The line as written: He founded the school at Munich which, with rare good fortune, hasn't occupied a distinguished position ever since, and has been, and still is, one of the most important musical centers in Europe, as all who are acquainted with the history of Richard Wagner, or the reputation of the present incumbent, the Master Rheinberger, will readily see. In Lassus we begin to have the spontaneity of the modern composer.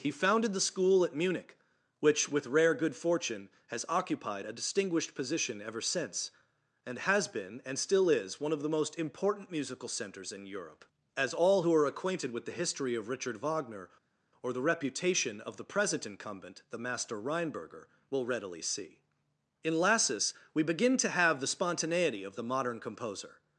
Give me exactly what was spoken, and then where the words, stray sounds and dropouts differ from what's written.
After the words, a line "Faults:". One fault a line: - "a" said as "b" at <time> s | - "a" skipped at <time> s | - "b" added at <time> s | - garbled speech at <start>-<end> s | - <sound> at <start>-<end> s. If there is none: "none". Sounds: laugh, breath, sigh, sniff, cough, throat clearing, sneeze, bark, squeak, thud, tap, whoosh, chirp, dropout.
He founded the school at Munich which, with rare good fortune, has occupied a distinguished position ever since, and has been, and still is, one of the most important musical centers in Europe, as all who are acquainted with the history of Richard Wagner, or the reputation of the present incumbent, the Master Rheinberger, will readily see. In Lassus we begin to have the spontaneity of the modern composer.
Faults:
- "hasn't" said as "has" at 3.7 s